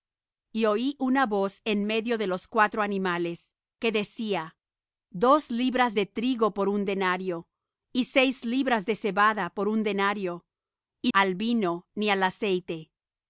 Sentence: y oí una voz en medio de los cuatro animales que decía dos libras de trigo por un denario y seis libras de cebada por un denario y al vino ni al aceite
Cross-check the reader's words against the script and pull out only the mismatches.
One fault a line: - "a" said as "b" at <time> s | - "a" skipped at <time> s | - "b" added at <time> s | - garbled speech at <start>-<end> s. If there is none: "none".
none